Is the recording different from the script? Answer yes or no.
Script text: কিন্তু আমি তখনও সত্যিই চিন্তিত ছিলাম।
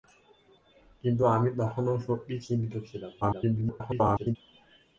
yes